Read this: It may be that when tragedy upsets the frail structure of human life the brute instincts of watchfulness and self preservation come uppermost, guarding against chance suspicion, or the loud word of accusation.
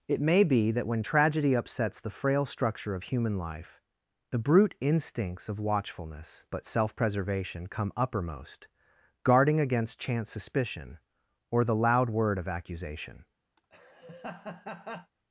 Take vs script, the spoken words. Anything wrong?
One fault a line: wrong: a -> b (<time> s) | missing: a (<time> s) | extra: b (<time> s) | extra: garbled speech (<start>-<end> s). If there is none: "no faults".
wrong: and -> but (6.5 s)